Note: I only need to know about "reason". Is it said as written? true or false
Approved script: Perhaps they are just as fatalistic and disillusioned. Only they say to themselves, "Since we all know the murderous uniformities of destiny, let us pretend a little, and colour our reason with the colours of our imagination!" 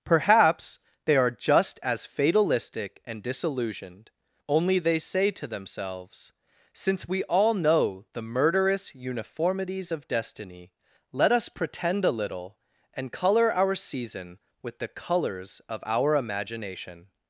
false